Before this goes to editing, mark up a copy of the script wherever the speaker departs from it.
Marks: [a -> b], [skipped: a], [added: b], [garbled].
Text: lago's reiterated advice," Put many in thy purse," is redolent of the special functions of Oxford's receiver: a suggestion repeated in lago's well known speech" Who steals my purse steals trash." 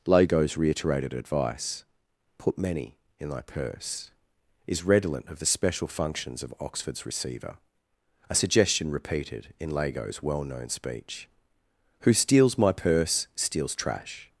lago's reiterated advice," Put many in thy purse," is redolent of the special functions of Oxford's receiver: a suggestion repeated in lago's well known speech" Who steals my purse steals trash."